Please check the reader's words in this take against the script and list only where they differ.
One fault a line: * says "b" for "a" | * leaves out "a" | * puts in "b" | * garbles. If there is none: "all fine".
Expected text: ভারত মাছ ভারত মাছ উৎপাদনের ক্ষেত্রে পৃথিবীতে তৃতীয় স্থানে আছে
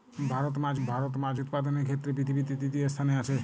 all fine